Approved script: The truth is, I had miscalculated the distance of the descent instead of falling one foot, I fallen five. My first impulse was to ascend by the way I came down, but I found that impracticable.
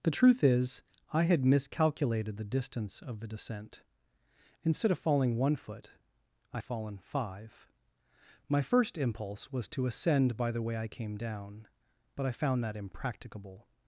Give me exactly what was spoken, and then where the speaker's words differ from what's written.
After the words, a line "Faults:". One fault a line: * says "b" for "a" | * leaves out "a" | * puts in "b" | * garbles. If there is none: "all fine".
The truth is, I had miscalculated the distance of the descent instead of falling one foot, I fallen five. My first impulse was to ascend by the way I came down, but I found that impracticable.
Faults:
all fine